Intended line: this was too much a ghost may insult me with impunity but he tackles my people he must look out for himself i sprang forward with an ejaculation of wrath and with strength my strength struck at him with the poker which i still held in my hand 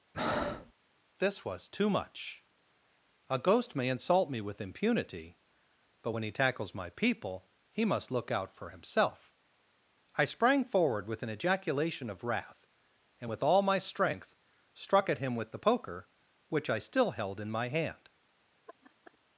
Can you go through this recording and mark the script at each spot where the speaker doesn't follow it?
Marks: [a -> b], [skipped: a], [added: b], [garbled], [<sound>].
[breath] this was too much a ghost may insult me with impunity but [added: when] he tackles my people he must look out for himself i sprang forward with an ejaculation of wrath and with [strength -> all] my strength struck at him with the poker which i still held in my hand [laugh]